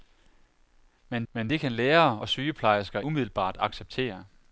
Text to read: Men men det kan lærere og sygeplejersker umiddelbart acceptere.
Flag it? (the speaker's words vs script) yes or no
no